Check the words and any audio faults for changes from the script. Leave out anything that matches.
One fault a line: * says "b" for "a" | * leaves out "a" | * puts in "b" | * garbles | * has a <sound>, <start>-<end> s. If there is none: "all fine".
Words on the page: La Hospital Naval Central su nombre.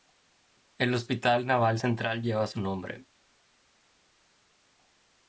* says "El" for "La"
* puts in "lleva"